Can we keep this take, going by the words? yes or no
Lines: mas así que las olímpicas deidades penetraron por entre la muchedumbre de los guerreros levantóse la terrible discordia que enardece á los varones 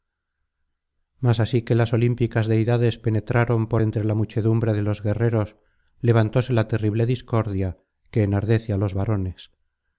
yes